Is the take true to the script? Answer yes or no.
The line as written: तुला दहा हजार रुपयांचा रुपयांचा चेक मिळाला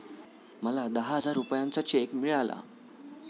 no